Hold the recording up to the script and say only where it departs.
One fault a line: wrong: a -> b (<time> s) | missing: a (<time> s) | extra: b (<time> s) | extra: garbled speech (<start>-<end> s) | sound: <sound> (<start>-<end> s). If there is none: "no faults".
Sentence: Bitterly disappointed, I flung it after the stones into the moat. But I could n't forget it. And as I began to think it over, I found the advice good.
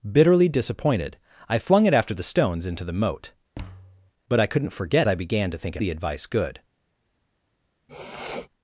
sound: thud (3.5-4.1 s)
missing: it And as (5.1 s)
missing: over I found (5.8 s)
sound: sniff (7.9-8.5 s)